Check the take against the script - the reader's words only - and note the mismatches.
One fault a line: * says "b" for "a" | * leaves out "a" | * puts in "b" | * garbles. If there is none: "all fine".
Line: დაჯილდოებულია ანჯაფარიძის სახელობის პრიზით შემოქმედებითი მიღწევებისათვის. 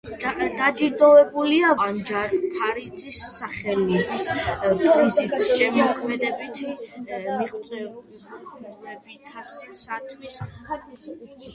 all fine